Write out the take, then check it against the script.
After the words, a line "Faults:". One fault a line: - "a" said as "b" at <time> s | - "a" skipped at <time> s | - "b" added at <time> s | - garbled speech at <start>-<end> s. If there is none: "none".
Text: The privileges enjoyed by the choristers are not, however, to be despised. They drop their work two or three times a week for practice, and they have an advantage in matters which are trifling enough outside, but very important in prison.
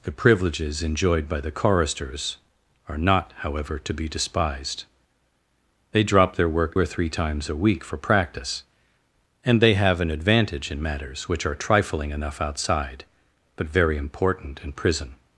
The privileges enjoyed by the choristers are not, however, to be despised. They drop their work or three times a week for practice, and they have an advantage in matters which are trifling enough outside, but very important in prison.
Faults:
- "two" skipped at 6.8 s